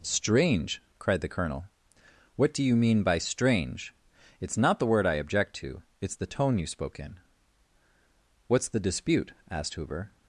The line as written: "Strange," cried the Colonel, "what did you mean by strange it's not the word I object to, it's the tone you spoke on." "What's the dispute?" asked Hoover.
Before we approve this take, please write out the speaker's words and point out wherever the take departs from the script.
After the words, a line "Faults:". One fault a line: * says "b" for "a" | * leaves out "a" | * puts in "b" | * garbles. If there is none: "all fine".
"Strange," cried the Colonel, "what do you mean by strange it's not the word I object to, it's the tone you spoke in." "What's the dispute?" asked Hoover.
Faults:
* says "do" for "did"
* says "in" for "on"